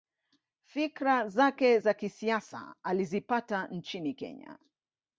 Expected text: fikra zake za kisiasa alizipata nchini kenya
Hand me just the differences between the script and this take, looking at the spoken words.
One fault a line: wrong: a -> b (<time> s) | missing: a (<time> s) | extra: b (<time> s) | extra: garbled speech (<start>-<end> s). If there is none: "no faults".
no faults